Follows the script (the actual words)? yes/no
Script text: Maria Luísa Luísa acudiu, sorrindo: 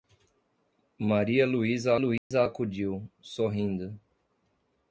yes